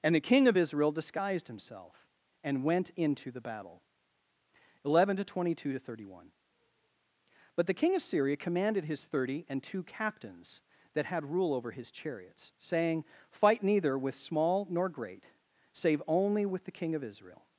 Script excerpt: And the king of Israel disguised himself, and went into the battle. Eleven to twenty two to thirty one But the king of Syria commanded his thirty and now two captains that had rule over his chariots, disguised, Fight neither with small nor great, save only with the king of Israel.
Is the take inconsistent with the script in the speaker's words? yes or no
yes